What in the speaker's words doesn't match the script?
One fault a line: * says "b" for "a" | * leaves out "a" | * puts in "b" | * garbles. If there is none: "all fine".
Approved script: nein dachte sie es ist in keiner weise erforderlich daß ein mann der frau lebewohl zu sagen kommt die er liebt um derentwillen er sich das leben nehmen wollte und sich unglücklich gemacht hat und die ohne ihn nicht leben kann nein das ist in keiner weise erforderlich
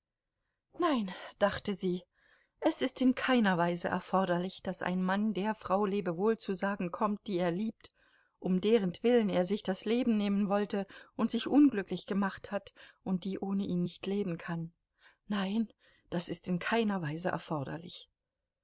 all fine